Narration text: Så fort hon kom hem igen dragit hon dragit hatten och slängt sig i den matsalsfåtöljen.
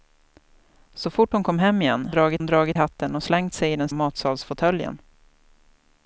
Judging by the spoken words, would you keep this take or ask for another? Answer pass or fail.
pass